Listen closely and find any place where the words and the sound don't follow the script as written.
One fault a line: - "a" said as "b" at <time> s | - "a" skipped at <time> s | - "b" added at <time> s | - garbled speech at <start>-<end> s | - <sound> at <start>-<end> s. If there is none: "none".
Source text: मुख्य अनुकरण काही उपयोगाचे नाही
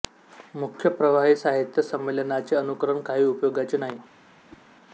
- "प्रवाही साहित्य संमेलनाचे" added at 0.9 s
- whoosh at 4.5-4.6 s